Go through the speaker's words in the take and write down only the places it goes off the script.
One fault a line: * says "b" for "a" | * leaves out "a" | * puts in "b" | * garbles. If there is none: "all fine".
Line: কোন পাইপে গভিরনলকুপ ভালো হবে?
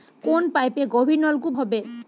* leaves out "ভালো"